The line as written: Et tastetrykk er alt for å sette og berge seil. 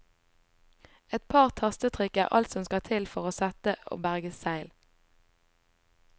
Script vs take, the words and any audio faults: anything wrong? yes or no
yes